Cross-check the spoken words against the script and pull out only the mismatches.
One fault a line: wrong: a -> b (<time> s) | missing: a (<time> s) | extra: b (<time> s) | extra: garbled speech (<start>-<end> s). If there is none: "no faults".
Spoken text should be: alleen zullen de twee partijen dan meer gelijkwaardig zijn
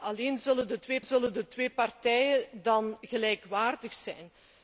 extra: zullen de twee (1.0 s)
missing: meer (3.0 s)